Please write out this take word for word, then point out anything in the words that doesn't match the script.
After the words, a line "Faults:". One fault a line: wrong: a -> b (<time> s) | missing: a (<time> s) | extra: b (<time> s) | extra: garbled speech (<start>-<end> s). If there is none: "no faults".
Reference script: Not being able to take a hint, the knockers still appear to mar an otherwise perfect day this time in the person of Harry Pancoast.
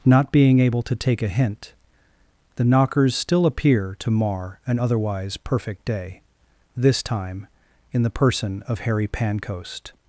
Not being able to take a hint, the knockers still appear to mar an otherwise perfect day this time in the person of Harry Pancoast.
Faults:
no faults